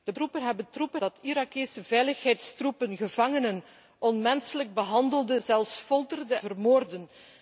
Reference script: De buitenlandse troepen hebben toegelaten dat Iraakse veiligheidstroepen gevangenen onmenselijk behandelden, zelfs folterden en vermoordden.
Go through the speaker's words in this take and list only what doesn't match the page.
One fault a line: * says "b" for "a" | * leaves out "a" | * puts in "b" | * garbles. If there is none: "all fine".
* leaves out "buitenlandse"
* says "troepen" for "toegelaten"
* leaves out "en"